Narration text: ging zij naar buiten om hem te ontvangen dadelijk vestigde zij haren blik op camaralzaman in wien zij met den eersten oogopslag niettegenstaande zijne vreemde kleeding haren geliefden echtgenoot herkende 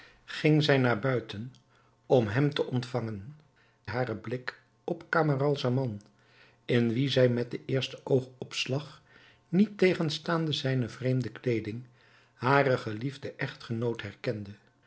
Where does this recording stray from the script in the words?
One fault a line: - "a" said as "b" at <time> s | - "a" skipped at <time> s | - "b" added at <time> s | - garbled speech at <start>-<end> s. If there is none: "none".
- "dadelijk vestigde zij" skipped at 3.4 s